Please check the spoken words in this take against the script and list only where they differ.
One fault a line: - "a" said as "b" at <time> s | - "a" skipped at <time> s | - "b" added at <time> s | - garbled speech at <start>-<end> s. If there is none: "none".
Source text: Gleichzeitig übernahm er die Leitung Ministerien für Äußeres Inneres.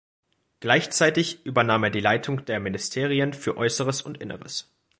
- "der" added at 2.5 s
- "und" added at 4.0 s